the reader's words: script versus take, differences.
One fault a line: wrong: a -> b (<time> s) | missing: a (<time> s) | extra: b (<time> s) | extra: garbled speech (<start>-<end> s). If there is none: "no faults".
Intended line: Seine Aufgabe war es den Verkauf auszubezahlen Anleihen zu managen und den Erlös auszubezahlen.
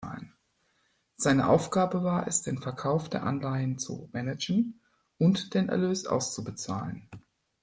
wrong: auszubezahlen -> der (3.1 s)